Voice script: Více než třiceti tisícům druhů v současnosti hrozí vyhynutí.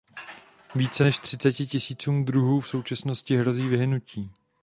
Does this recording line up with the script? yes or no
yes